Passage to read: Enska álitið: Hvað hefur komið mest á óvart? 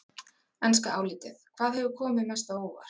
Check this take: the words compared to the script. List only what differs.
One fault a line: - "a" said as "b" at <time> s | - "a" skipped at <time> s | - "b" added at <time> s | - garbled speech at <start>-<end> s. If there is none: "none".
none